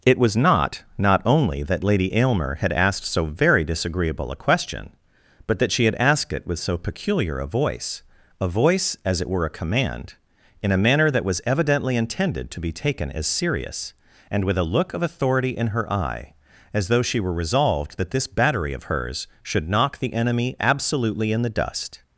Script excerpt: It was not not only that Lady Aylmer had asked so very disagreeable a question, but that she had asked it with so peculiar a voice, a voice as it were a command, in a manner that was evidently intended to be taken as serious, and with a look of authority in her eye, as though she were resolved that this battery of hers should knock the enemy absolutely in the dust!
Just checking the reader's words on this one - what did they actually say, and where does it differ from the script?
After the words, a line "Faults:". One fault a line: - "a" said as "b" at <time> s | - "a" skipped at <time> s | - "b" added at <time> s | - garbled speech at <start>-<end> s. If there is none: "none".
It was not not only that Lady Aylmer had asked so very disagreeable a question, but that she had asked it with so peculiar a voice, a voice as it were a command, in a manner that was evidently intended to be taken as serious, and with a look of authority in her eye, as though she were resolved that this battery of hers should knock the enemy absolutely in the dust!
Faults:
none